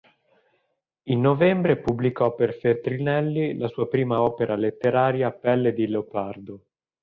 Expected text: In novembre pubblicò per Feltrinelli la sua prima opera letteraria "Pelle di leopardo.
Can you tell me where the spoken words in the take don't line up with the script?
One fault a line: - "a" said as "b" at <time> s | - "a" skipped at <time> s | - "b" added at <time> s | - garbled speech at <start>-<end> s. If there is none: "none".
none